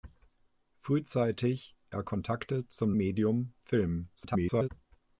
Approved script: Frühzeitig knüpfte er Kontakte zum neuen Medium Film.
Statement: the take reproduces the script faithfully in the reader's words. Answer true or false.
false